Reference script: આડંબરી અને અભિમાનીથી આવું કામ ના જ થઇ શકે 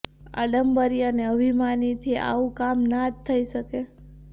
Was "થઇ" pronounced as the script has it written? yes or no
yes